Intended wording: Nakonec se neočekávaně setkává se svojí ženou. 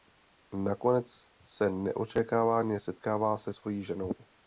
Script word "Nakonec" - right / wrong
right